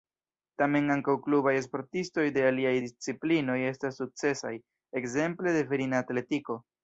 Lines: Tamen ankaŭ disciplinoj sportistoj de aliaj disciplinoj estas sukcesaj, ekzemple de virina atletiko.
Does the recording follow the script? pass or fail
fail